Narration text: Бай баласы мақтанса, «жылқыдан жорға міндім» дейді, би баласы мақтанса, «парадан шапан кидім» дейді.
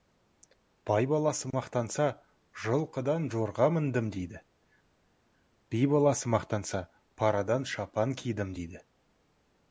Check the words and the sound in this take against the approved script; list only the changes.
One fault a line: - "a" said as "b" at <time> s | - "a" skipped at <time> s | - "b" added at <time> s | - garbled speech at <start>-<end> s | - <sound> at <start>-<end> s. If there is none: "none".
none